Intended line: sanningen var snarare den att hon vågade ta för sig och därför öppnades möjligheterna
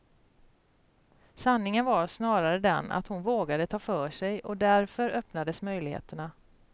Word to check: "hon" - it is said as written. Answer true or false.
true